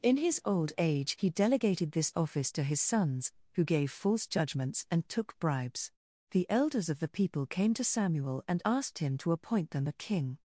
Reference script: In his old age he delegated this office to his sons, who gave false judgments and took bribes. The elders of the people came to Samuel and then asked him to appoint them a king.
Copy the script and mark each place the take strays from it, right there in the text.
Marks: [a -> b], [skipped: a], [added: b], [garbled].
In his old age he delegated this office to his sons, who gave false judgments and took bribes. The elders of the people came to Samuel and [skipped: then] asked him to appoint them a king.